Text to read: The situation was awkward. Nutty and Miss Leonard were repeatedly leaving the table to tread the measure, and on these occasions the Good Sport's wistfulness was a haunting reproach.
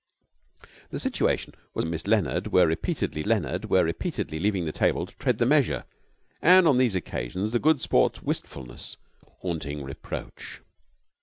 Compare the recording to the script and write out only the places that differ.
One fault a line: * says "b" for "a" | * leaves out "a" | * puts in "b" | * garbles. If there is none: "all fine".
* leaves out "awkward Nutty"
* puts in "Leonard were repeatedly"
* leaves out "was"